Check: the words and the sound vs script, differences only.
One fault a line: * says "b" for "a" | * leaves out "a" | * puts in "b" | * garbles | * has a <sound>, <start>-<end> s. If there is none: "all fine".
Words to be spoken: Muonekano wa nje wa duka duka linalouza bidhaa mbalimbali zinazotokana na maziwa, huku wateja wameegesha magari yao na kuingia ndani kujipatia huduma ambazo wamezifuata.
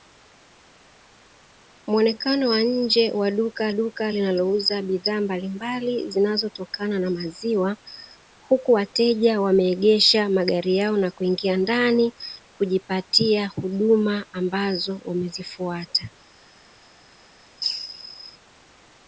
all fine